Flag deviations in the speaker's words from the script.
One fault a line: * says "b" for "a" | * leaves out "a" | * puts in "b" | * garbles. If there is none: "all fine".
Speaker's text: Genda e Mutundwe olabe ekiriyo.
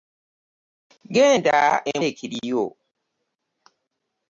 * leaves out "Mutundwe olabe"